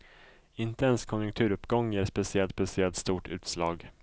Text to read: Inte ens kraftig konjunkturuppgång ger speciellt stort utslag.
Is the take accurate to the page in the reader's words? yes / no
no